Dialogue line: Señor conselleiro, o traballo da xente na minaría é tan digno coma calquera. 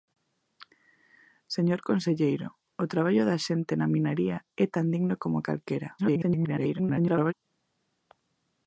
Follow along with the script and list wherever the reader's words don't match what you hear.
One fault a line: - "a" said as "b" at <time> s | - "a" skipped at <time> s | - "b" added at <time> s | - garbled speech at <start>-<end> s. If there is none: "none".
- garbled speech at 6.0-7.3 s